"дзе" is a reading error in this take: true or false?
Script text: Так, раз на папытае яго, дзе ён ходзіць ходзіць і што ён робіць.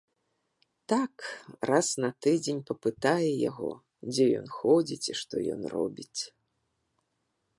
false